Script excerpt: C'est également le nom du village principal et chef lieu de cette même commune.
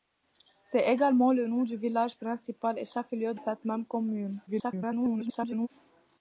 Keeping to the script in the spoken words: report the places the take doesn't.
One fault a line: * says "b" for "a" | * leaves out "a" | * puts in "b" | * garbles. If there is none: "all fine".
* leaves out "de"
* garbles